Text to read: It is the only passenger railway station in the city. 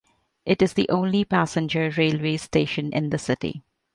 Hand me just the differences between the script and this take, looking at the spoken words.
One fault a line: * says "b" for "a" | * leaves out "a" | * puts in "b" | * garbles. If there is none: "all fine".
all fine